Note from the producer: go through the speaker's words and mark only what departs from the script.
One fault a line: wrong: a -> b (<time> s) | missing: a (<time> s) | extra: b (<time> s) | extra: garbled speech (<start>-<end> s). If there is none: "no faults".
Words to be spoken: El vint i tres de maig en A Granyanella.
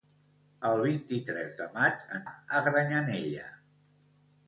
no faults